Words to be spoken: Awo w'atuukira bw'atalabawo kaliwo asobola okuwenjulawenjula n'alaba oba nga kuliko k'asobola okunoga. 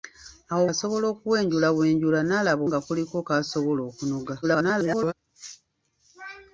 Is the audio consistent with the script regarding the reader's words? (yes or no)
no